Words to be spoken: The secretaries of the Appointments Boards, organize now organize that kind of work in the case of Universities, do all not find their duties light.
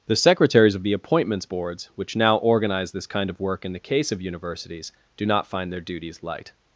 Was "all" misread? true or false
true